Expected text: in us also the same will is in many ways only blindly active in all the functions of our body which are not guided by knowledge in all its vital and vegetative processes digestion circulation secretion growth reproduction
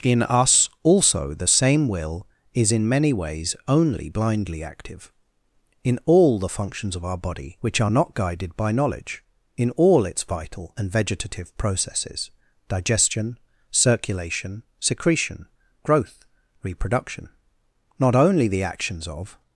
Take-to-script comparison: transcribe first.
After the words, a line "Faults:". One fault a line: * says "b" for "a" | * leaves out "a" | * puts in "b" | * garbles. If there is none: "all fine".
in us also the same will is in many ways only blindly active in all the functions of our body which are not guided by knowledge in all its vital and vegetative processes digestion circulation secretion growth reproduction not only the actions of
Faults:
* puts in "not only the actions of"